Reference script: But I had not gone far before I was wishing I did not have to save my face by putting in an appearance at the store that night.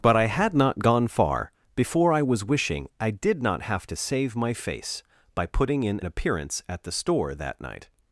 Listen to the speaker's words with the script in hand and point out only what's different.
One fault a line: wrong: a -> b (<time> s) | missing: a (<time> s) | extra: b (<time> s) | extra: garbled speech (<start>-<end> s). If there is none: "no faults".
missing: an (6.0 s)